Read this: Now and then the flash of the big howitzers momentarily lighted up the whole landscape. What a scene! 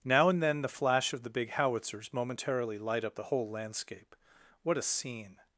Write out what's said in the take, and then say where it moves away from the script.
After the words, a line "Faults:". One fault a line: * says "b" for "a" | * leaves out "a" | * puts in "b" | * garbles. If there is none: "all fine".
Now and then the flash of the big howitzers momentarily light up the whole landscape. What a scene!
Faults:
* says "light" for "lighted"